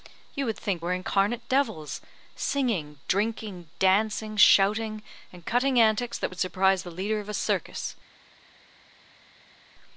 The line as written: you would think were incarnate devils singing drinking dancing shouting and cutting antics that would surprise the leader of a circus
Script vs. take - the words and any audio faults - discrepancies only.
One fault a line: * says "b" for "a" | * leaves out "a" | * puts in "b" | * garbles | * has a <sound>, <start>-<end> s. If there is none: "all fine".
all fine